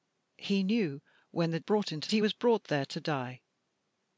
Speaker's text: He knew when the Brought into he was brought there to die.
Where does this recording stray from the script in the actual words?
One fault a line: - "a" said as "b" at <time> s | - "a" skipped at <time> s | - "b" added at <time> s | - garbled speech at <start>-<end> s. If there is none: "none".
none